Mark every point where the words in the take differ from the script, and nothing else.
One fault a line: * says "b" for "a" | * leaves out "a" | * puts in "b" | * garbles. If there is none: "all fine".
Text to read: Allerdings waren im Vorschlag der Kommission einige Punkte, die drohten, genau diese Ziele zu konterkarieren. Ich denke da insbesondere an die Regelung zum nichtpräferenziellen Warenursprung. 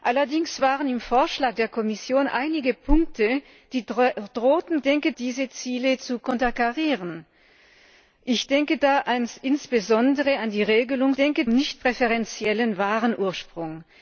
* says "denke" for "genau"
* says "denke" for "zum"